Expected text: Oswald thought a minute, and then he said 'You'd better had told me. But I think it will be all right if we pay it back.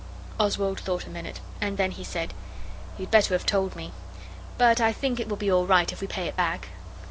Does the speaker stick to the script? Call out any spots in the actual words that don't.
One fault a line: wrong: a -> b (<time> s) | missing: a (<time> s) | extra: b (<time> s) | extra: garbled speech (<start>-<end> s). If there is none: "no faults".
wrong: had -> have (3.3 s)